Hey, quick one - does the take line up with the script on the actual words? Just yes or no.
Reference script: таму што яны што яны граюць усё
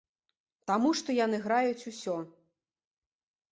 no